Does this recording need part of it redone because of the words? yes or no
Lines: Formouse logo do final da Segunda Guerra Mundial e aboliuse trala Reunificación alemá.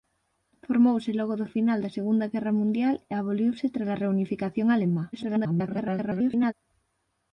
yes